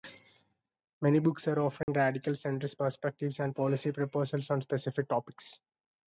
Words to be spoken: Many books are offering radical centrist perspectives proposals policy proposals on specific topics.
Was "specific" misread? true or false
false